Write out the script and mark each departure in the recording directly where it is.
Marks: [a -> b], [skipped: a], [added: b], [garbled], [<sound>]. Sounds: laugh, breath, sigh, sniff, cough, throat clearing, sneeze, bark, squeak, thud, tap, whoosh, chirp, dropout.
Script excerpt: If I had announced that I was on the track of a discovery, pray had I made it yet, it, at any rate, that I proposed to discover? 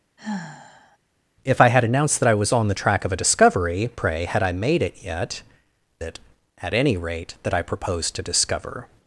[sigh] If I had announced that I was on the track of a discovery, pray had I made it yet, it, at any rate, that I proposed to discover?